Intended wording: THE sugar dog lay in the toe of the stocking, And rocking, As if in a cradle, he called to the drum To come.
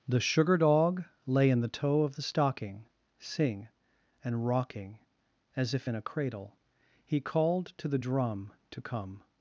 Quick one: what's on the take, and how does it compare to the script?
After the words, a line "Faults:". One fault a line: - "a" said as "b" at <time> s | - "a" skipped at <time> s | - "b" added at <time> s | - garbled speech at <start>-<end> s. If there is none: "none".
THE sugar dog lay in the toe of the stocking, sing And rocking, As if in a cradle, he called to the drum To come.
Faults:
- "sing" added at 3.2 s